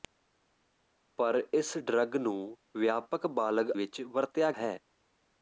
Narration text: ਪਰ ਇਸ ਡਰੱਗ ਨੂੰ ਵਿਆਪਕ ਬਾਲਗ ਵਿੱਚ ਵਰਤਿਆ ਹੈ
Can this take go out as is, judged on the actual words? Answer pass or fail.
pass